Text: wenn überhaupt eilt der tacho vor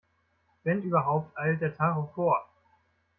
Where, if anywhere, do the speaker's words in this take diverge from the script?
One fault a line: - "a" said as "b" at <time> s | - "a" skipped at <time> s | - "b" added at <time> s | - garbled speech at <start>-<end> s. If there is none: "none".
none